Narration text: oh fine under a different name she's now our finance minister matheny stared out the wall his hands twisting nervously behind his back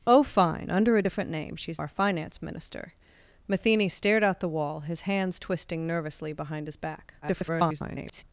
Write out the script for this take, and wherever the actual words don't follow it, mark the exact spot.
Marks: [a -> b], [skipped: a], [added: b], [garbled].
oh fine under a different name she's [skipped: now] our finance minister matheny stared out the wall his hands twisting nervously behind his back [garbled]